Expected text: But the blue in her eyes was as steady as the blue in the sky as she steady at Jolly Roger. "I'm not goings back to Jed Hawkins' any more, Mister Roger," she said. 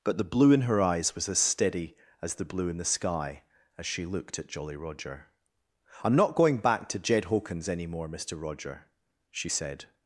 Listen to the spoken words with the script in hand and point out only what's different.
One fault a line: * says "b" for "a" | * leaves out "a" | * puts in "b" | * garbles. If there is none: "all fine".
* says "looked" for "steady"
* says "going" for "goings"